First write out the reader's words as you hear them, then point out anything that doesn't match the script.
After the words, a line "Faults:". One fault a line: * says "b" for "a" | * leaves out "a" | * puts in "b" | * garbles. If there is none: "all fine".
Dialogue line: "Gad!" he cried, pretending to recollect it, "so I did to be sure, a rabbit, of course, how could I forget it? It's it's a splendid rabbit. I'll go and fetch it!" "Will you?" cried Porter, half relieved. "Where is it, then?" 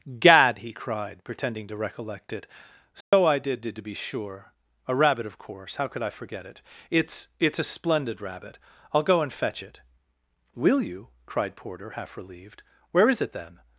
"Gad!" he cried, pretending to recollect it, "so I did did to be sure, a rabbit, of course, how could I forget it? It's it's a splendid rabbit. I'll go and fetch it!" "Will you?" cried Porter, half relieved. "Where is it, then?"
Faults:
* puts in "did"